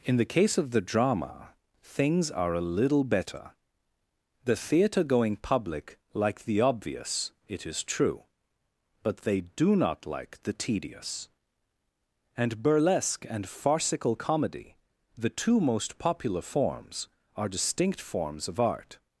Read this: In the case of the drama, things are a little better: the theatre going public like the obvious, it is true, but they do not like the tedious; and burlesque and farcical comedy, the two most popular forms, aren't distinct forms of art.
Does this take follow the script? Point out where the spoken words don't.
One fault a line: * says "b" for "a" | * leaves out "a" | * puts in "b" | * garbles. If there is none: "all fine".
* says "are" for "aren't"